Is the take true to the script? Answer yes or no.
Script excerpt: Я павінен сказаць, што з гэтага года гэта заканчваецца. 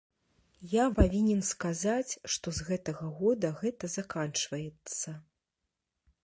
yes